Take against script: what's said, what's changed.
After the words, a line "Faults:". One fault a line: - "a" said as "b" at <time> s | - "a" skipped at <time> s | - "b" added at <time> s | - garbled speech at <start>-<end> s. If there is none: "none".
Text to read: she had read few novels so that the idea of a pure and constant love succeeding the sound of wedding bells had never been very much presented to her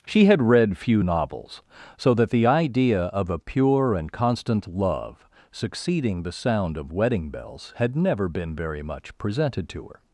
she had read few novels so that the idea of a pure and constant love succeeding the sound of wedding bells had never been very much presented to her
Faults:
none